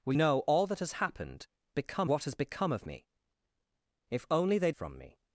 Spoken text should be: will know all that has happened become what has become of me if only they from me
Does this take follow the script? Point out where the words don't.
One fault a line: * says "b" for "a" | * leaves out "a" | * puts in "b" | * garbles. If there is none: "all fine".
all fine